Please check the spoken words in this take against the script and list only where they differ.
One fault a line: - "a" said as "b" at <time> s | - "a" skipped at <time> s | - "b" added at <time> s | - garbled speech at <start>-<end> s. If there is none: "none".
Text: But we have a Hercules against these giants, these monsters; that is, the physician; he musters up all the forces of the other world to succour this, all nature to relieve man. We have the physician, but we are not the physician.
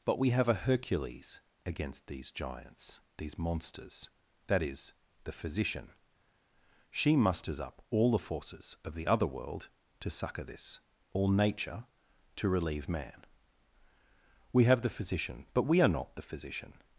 - "he" said as "she" at 6.9 s